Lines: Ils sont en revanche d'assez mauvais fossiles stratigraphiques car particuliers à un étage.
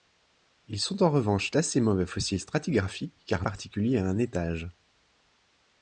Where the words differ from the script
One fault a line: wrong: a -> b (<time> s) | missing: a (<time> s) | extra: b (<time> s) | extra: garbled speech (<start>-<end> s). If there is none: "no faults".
no faults